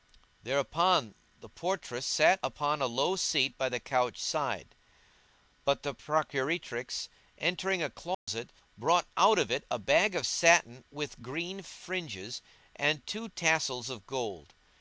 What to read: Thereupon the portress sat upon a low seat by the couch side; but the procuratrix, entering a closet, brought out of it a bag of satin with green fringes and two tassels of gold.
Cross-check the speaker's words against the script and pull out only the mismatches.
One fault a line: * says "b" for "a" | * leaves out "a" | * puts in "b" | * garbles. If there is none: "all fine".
all fine